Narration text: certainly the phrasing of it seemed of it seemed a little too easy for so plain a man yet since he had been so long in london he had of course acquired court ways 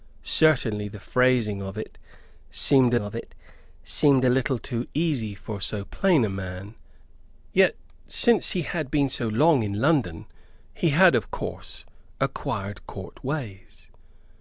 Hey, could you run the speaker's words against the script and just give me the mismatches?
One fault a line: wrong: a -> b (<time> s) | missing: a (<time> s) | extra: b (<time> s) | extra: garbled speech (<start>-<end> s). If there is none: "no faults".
no faults